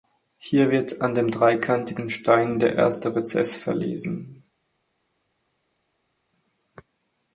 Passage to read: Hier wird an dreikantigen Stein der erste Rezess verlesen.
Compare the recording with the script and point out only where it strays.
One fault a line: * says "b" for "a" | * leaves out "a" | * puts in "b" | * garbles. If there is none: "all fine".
* puts in "dem"